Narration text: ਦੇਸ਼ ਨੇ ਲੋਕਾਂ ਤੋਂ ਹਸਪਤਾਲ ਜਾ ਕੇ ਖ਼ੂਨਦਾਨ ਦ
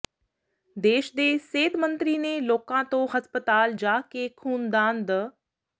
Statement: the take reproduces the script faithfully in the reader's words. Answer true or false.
false